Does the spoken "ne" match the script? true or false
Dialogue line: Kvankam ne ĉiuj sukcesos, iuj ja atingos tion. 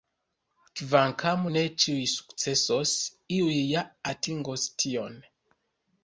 true